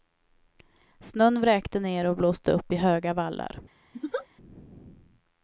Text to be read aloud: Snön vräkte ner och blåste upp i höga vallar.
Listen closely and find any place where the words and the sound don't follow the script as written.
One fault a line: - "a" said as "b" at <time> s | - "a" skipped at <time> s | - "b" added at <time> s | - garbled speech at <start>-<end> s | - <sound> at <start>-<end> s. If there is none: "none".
- laugh at 3.9-4.3 s